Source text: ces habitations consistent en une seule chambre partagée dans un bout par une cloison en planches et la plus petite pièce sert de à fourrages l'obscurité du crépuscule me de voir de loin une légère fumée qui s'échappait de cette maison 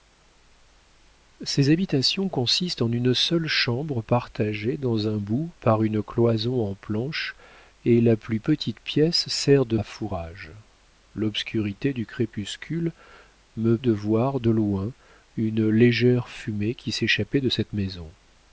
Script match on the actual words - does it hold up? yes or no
yes